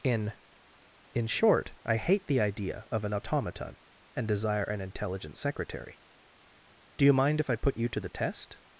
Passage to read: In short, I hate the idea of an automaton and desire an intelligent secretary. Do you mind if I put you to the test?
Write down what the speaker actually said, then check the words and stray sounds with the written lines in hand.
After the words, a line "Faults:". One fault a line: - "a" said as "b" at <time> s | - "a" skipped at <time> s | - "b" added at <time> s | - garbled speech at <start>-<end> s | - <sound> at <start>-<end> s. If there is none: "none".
In in short, I hate the idea of an automaton and desire an intelligent secretary. Do you mind if I put you to the test?
Faults:
- "in" added at 1.1 s